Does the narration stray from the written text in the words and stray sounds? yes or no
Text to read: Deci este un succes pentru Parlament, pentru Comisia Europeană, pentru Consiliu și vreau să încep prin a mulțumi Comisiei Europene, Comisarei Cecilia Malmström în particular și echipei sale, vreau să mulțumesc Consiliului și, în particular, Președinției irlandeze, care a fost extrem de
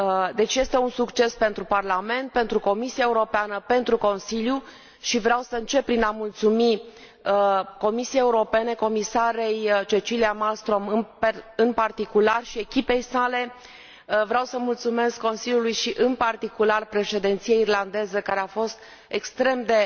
no